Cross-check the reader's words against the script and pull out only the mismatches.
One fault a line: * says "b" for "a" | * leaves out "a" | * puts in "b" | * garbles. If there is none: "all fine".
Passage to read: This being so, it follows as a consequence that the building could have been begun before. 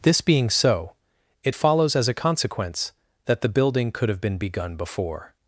all fine